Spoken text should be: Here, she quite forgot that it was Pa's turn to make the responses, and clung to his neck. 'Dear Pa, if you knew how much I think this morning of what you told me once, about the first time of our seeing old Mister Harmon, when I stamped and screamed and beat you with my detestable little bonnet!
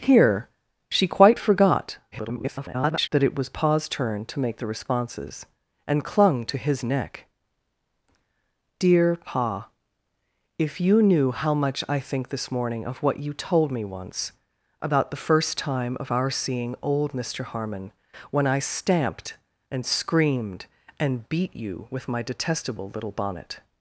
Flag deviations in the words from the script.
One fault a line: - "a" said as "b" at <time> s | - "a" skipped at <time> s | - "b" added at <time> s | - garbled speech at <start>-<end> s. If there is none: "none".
- garbled speech at 2.1-3.1 s